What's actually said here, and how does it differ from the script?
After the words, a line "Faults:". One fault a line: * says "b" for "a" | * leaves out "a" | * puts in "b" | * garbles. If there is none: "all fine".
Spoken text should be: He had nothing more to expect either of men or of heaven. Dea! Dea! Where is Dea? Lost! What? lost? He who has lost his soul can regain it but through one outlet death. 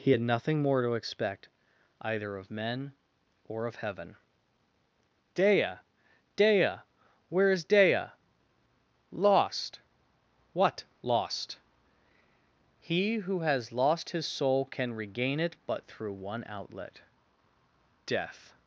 He had nothing more to expect either of men or of heaven. Dea! Dea! Where is Dea? Lost! What? lost? He who has lost his soul can regain it but through one outlet death.
Faults:
all fine